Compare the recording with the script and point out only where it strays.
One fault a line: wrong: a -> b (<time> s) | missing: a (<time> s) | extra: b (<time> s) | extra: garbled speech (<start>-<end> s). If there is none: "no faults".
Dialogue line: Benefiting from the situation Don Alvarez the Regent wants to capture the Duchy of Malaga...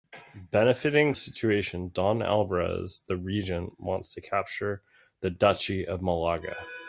missing: from (1.1 s)